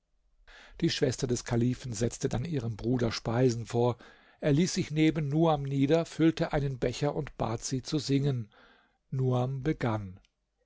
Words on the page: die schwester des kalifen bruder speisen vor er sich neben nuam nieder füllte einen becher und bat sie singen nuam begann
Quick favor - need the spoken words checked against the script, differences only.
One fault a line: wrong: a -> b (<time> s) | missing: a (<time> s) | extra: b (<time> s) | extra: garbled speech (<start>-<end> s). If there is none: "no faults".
extra: setzte dann ihrem (1.9 s)
extra: ließ (4.5 s)
extra: zu (7.8 s)